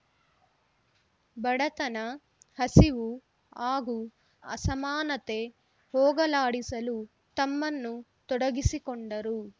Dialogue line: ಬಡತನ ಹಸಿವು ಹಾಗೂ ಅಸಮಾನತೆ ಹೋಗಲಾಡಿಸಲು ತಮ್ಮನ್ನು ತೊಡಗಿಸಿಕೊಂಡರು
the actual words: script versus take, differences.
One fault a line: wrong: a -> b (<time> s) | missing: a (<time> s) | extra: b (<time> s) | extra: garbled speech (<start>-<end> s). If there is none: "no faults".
no faults